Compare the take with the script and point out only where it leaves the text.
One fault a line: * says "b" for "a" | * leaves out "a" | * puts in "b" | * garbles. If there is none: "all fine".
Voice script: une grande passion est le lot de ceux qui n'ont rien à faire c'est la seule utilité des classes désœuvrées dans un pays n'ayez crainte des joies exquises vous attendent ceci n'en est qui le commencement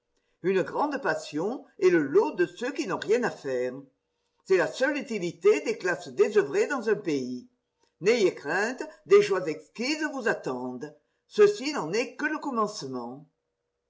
* says "que" for "qui"